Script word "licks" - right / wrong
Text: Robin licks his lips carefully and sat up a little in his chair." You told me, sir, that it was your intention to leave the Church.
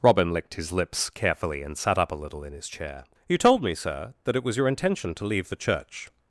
wrong